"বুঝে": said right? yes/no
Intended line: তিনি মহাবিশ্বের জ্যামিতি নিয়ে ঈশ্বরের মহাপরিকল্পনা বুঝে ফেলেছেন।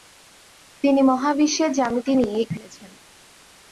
no